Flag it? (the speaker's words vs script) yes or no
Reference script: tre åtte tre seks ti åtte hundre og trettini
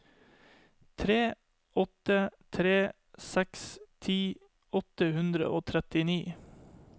no